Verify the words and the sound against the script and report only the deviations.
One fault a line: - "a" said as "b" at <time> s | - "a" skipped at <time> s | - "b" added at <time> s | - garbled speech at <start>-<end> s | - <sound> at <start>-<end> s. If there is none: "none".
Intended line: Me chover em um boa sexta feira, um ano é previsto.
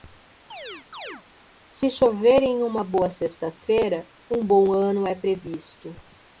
- chirp at 0.5-1.2 s
- "Me" said as "Se" at 1.7 s
- "um" said as "uma" at 2.6 s
- "bom" added at 4.4 s